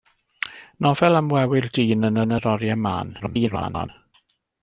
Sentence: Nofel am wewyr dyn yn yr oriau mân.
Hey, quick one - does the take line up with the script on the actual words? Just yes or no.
no